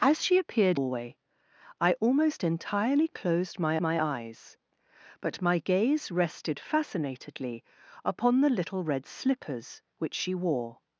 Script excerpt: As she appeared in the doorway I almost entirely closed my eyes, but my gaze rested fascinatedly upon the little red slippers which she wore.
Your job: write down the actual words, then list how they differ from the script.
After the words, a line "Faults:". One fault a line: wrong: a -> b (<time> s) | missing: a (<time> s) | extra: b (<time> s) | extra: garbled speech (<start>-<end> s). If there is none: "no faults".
As she appeared doorway I almost entirely closed my my eyes, but my gaze rested fascinatedly upon the little red slippers which she wore.
Faults:
missing: in the (0.8 s)
extra: my (3.8 s)